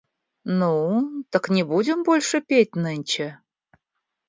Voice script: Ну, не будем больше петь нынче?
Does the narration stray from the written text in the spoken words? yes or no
yes